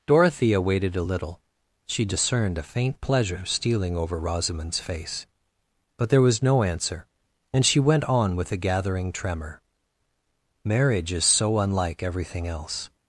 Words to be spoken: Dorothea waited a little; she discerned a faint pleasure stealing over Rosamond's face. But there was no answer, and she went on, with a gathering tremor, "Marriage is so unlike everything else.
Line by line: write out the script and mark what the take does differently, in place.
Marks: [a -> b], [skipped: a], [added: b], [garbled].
Dorothea waited a little; she discerned a faint pleasure stealing over Rosamond's face. But there was no answer, and she went on, with a gathering tremor, "Marriage is so unlike everything else.